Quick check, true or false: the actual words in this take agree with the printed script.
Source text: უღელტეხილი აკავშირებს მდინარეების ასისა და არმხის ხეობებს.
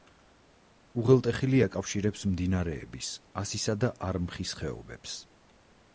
true